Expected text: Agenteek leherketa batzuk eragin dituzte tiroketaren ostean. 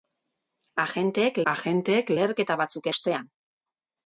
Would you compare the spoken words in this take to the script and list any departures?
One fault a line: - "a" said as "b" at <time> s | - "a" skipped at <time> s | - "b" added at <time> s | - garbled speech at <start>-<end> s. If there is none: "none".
- "agenteek" added at 1.5 s
- "eragin dituzte tiroketaren" skipped at 2.9 s